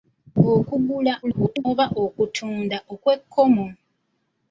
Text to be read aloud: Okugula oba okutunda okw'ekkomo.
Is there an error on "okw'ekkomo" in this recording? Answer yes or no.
no